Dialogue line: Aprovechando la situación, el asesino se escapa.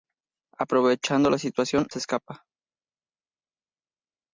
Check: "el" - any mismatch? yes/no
yes